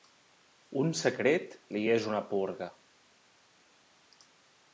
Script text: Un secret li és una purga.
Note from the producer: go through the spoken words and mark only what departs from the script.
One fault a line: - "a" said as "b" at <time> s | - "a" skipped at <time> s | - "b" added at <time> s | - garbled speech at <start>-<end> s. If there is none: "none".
none